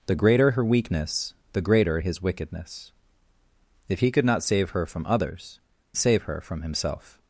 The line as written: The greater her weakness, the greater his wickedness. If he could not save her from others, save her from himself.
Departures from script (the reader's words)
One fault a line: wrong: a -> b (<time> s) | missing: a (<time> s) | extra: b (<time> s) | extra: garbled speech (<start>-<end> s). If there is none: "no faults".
no faults